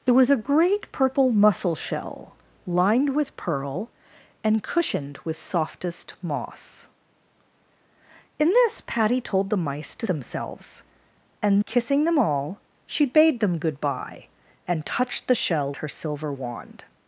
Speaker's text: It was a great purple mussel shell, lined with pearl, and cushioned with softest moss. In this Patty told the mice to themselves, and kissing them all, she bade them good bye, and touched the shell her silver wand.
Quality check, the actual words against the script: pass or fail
pass